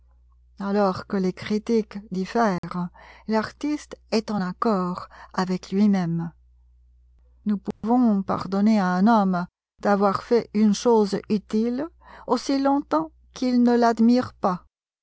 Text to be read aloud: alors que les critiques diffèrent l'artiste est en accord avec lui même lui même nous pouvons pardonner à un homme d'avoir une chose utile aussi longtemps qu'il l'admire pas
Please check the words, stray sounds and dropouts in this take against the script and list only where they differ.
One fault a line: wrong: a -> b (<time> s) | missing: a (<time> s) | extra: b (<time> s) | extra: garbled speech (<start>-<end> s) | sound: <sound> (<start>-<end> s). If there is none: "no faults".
sound: dropout (2.6-2.6 s)
missing: lui même (6.3 s)
sound: dropout (7.7-7.8 s)
extra: fait (10.2 s)
extra: ne (13.6 s)